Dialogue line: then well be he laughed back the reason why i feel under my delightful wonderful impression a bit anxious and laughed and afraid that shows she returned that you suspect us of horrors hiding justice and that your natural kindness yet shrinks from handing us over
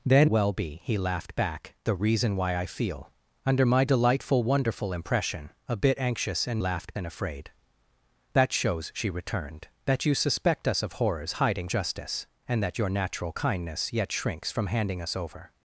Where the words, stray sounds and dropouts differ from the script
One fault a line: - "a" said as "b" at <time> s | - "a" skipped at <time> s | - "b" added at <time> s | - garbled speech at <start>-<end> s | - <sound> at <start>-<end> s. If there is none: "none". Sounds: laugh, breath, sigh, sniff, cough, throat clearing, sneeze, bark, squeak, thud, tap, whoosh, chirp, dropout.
none